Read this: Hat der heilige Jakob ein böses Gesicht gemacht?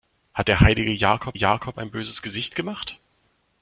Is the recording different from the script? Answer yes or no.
yes